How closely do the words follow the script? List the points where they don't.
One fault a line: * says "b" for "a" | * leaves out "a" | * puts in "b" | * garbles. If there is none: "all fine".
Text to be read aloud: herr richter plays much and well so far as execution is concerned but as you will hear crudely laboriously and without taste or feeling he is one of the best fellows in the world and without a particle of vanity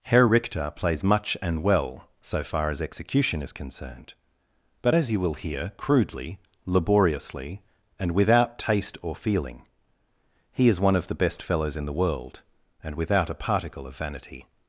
all fine